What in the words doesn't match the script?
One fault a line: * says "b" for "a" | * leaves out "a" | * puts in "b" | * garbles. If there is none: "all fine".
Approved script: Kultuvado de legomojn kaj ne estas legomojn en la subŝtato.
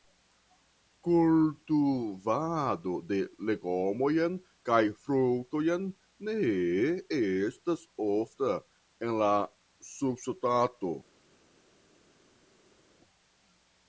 * puts in "fruktojn"
* says "ofta" for "legomojn"